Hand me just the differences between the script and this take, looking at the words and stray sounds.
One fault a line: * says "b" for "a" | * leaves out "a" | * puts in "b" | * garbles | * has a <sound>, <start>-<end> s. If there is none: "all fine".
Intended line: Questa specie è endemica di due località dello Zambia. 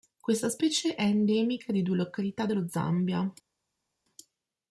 all fine